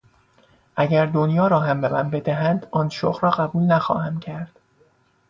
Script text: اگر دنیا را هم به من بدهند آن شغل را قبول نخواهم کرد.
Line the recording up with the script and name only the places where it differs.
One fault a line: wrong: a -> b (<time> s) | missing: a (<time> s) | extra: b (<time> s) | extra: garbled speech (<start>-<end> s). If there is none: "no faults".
no faults